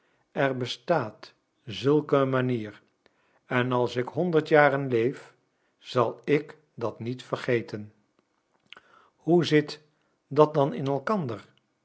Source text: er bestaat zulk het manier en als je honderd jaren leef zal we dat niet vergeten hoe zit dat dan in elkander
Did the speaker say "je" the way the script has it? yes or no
no